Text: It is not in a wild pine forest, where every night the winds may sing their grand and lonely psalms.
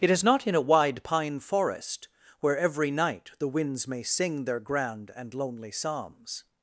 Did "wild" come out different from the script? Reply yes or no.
yes